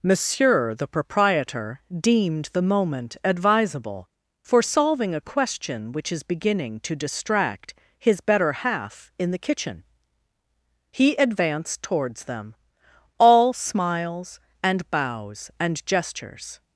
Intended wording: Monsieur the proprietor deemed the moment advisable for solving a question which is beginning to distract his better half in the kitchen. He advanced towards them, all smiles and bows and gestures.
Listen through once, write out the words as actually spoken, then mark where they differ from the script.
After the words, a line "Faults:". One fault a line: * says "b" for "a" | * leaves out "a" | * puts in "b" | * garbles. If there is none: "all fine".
Monsieur the proprietor deemed the moment advisable for solving a question which is beginning to distract his better half in the kitchen. He advanced towards them, all smiles and bows and gestures.
Faults:
all fine